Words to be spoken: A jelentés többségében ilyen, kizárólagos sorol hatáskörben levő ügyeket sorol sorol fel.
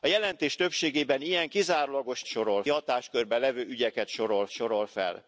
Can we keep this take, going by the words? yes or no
yes